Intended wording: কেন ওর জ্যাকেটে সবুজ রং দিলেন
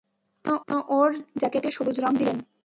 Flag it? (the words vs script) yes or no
yes